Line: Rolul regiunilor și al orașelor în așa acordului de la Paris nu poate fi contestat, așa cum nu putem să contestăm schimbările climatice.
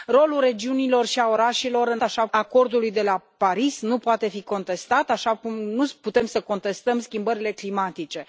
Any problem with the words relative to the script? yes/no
no